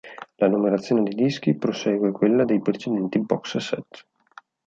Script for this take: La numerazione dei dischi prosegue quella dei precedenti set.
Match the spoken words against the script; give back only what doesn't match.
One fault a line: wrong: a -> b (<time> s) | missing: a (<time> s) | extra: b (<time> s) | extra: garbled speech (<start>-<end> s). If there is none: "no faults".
extra: box (3.2 s)